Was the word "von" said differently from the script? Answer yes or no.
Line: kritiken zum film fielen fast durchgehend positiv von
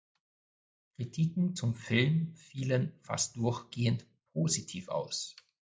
yes